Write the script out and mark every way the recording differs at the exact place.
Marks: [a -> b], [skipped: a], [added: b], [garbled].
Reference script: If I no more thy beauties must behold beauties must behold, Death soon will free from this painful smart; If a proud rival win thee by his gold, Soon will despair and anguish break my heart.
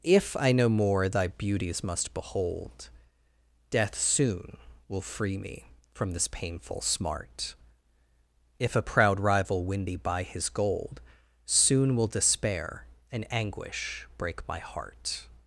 If I no more thy beauties must behold [skipped: beauties must behold,] Death soon will free [added: me] from this painful smart; If a proud rival win thee by his gold, Soon will despair and anguish break my heart.